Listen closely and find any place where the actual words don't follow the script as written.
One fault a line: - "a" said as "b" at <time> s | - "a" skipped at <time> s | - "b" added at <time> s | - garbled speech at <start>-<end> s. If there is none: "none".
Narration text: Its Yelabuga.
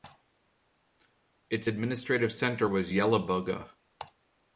- "administrative centre was" added at 1.7 s